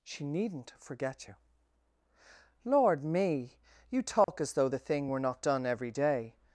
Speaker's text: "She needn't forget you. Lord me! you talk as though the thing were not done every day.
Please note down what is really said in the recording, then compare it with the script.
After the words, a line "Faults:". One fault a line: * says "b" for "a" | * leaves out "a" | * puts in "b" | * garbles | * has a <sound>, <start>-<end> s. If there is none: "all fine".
"She needn't forget you. Lord me! you talk as though the thing were not done every day.
Faults:
* has a dropout, 4.2-4.3 s